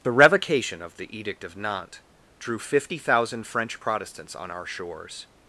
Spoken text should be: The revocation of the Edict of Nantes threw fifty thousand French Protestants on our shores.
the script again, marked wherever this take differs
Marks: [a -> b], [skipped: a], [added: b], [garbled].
The revocation of the Edict of Nantes [threw -> drew] fifty thousand French Protestants on our shores.